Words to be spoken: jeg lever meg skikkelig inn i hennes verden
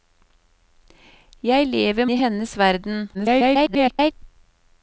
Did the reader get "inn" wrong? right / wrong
wrong